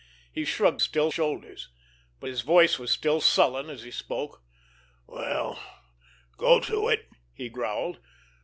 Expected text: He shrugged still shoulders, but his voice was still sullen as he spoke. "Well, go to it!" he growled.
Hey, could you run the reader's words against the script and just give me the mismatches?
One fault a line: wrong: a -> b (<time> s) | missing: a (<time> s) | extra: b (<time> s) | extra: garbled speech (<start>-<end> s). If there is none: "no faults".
no faults